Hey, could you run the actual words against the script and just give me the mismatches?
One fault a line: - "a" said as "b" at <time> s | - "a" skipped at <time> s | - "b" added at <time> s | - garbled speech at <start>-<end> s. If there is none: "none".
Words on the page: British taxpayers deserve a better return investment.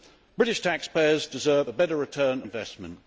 none